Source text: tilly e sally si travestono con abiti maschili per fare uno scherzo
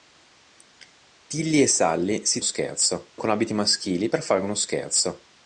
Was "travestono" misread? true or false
true